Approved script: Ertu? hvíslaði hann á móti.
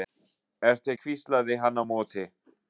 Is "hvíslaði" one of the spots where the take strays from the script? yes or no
no